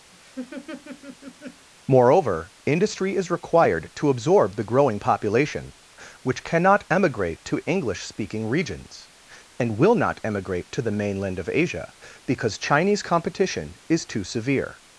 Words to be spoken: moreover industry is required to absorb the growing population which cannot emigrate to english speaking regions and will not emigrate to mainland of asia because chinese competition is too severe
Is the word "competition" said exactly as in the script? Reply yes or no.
yes